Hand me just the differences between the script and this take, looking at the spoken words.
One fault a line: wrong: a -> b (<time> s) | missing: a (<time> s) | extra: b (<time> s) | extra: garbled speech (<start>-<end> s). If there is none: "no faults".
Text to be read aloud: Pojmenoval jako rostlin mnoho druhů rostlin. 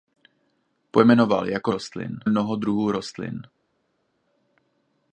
no faults